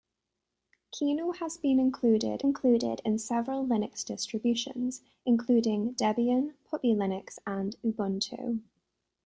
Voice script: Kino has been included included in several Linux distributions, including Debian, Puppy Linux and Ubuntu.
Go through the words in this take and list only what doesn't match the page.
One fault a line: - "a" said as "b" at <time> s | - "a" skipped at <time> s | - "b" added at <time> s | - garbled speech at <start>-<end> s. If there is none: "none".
none